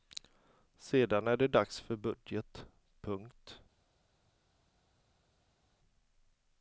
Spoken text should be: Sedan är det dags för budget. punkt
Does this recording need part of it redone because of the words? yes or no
no